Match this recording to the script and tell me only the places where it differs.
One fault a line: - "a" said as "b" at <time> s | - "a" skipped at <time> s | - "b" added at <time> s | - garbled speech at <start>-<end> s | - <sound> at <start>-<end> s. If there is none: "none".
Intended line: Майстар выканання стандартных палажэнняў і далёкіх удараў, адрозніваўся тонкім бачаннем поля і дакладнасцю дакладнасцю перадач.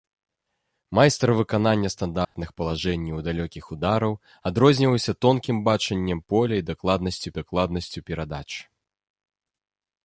- dropout at 2.2-2.3 s